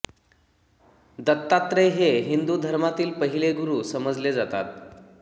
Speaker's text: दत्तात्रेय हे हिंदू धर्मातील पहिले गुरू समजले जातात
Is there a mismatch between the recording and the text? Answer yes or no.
no